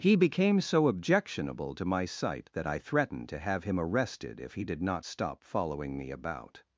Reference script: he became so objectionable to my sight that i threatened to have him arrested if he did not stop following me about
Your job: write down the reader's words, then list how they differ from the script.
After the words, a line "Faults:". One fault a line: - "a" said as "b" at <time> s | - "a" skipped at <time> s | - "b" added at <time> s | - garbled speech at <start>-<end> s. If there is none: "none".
he became so objectionable to my sight that i threatened to have him arrested if he did not stop following me about
Faults:
none